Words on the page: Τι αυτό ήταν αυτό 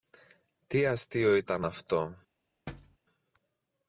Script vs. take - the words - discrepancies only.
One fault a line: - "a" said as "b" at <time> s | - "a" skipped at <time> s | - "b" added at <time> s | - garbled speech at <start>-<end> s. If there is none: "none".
- "αυτό" said as "αστείο" at 0.8 s